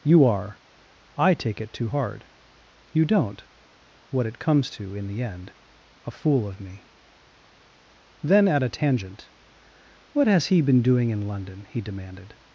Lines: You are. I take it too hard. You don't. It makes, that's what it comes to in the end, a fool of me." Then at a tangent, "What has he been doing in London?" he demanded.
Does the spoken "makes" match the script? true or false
false